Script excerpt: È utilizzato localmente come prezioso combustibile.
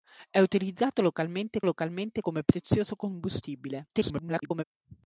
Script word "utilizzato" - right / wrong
right